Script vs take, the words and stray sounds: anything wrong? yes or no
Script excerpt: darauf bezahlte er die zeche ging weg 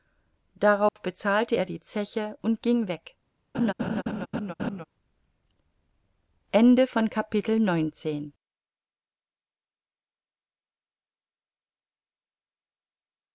yes